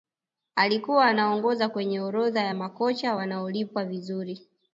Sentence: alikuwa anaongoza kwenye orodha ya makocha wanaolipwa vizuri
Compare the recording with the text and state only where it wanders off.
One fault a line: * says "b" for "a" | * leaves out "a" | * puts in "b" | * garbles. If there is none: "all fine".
all fine